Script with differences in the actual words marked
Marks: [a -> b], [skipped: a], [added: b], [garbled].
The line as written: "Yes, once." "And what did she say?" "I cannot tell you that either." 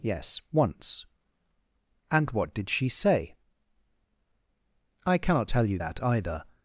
"Yes, once." "And what did she say?" "I cannot tell you that either."